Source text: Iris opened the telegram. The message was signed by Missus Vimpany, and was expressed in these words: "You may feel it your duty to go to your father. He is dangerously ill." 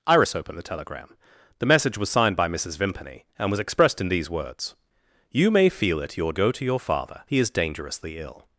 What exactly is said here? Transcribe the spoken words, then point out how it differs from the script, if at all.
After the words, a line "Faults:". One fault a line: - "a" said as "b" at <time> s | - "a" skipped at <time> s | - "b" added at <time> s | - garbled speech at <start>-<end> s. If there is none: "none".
Iris opened the telegram. The message was signed by Missus Vimpany, and was expressed in these words: "You may feel it your go to your father. He is dangerously ill."
Faults:
- "duty to" skipped at 6.3 s